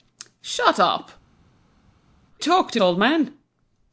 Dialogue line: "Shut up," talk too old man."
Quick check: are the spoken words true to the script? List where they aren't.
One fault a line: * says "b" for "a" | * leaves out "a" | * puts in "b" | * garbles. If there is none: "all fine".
all fine